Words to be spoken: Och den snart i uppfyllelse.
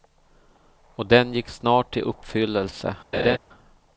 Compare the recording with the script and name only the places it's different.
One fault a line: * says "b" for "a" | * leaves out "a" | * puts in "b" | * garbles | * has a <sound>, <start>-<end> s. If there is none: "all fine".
* puts in "gick"
* has a laugh, 3.1-3.4 s